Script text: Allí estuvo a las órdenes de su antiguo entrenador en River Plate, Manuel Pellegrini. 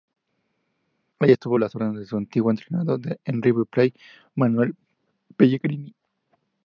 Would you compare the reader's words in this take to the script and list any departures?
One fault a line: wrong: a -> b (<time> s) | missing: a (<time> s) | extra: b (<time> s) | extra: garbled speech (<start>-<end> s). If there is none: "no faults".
no faults